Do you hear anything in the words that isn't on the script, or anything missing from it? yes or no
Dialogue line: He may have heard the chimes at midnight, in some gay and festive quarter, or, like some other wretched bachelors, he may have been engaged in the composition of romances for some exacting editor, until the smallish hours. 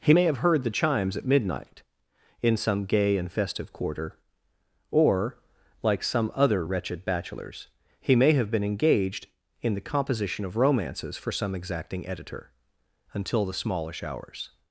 no